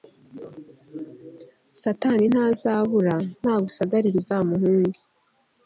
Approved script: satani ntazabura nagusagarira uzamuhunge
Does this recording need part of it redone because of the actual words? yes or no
no